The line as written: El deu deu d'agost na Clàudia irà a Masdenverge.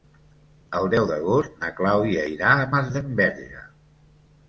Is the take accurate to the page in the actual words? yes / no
no